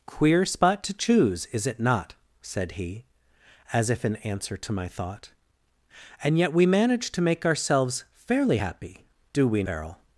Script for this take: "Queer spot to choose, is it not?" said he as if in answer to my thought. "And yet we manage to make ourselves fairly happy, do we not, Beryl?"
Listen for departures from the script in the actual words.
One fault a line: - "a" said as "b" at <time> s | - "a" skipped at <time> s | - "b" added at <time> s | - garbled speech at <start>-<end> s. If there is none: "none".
- "not" skipped at 9.6 s